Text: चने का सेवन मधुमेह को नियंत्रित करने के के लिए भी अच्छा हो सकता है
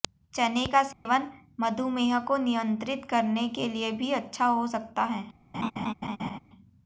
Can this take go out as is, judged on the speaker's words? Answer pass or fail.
fail